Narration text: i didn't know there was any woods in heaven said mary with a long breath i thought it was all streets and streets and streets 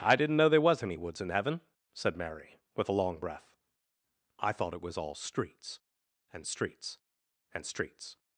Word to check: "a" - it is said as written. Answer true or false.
true